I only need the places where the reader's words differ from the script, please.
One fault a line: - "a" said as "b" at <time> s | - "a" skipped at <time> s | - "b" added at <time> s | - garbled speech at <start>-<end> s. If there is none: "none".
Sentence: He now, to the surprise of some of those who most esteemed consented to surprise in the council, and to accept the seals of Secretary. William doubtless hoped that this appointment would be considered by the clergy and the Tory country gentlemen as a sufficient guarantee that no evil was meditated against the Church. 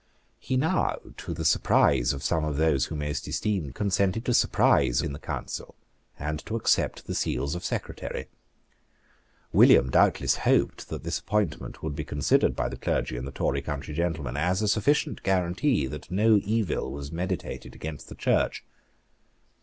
none